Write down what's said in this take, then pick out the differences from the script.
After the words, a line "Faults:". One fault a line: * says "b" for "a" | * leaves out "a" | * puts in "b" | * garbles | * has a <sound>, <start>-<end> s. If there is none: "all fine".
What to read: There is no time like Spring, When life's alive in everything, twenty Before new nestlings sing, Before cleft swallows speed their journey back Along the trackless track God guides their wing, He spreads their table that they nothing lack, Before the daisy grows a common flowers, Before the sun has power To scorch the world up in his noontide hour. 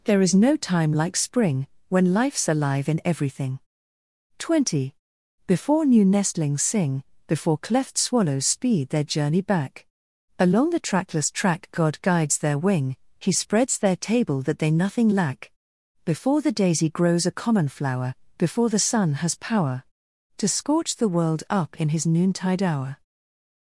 There is no time like Spring, When life's alive in everything, twenty Before new nestlings sing, Before cleft swallows speed their journey back Along the trackless track God guides their wing, He spreads their table that they nothing lack, Before the daisy grows a common flower, Before the sun has power To scorch the world up in his noontide hour.
Faults:
* says "flower" for "flowers"